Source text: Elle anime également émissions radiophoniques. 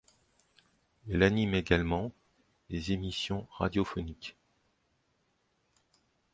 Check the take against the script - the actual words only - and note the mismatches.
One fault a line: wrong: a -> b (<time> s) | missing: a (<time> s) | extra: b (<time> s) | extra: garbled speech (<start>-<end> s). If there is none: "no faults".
extra: des (2.7 s)